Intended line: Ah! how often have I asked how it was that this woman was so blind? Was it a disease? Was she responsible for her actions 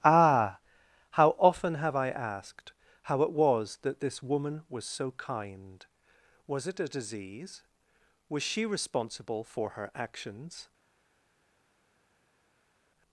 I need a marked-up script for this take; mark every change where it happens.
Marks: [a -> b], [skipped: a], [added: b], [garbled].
Ah! how often have I asked how it was that this woman was so [blind? -> kind] Was it a disease? Was she responsible for her actions